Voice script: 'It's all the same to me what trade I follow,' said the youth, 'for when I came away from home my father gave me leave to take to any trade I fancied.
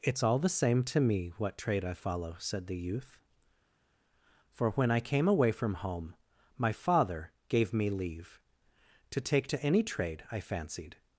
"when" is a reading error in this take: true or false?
false